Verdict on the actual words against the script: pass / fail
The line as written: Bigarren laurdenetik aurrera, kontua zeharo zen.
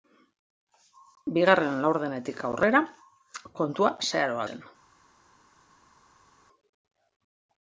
pass